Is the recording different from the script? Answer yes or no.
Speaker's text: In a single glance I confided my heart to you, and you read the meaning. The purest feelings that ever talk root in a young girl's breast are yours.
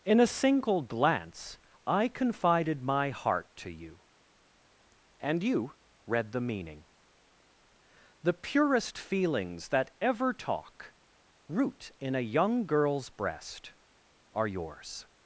no